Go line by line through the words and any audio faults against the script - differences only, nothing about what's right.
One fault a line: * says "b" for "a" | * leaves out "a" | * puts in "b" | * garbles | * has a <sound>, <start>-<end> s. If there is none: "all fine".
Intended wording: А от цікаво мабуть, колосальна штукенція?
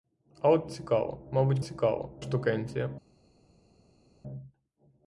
* says "цікаво" for "колосальна"